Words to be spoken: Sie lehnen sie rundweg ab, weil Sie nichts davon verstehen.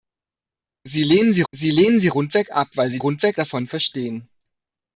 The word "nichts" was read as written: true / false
false